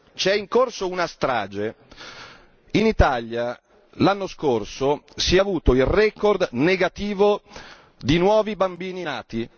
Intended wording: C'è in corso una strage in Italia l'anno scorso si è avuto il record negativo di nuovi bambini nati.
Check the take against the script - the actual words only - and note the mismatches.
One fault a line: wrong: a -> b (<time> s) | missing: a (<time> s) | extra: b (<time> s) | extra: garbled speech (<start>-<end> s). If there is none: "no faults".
no faults